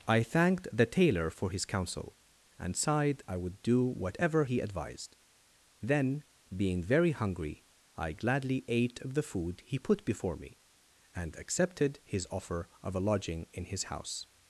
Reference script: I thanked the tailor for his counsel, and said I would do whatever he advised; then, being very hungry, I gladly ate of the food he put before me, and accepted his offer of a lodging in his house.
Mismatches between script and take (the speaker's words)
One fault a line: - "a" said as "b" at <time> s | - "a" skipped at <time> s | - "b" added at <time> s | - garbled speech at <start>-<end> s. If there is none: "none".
- "said" said as "sighed" at 2.8 s